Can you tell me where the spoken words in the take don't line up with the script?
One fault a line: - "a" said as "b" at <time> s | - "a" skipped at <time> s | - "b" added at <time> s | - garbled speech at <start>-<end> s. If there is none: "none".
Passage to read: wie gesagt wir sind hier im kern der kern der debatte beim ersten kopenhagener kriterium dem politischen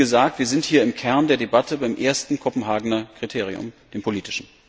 - "kern der" skipped at 1.4 s